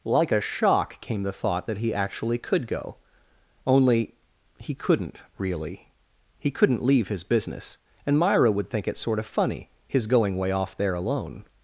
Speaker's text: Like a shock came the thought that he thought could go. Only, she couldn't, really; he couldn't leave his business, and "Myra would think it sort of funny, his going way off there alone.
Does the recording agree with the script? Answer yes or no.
no